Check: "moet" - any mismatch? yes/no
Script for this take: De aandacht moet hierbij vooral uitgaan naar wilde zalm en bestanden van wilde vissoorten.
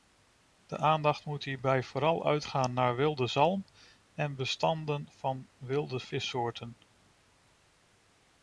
no